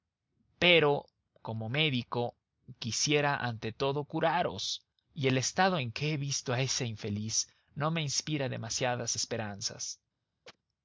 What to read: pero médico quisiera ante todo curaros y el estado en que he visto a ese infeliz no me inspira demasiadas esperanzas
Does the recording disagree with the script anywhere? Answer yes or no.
yes